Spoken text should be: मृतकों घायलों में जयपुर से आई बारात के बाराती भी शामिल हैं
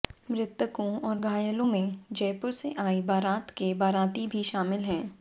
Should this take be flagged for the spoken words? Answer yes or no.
yes